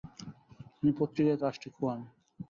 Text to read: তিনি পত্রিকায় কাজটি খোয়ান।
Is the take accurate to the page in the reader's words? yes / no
yes